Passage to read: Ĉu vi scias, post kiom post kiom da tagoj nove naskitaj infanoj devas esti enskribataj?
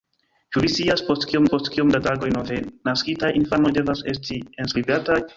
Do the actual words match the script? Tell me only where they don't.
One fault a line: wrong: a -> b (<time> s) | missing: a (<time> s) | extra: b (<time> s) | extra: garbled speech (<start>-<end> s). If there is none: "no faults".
no faults